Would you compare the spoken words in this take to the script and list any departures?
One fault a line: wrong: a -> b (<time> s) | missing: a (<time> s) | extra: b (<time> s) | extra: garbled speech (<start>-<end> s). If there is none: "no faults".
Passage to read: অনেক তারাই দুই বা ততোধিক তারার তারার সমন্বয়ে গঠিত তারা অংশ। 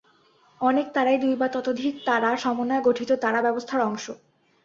missing: তারার (2.4 s)
extra: ব্যবস্থার (3.4 s)